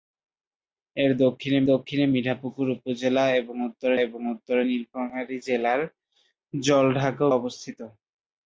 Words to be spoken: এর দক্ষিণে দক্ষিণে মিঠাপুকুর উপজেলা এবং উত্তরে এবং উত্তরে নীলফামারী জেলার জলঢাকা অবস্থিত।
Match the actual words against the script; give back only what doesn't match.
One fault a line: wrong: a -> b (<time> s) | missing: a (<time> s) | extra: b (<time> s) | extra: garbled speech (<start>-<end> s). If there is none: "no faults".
no faults